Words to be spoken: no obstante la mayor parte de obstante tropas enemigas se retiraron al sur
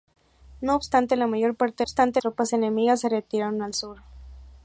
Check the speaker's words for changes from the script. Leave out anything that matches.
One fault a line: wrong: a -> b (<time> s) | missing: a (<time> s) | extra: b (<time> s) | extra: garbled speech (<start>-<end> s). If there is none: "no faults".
no faults